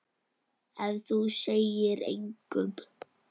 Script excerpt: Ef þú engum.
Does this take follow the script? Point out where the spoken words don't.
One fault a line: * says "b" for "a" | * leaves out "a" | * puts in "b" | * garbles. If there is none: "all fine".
* puts in "segir"